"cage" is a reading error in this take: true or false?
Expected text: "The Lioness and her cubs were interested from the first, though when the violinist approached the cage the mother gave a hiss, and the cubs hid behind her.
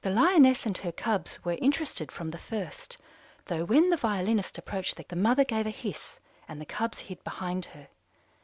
true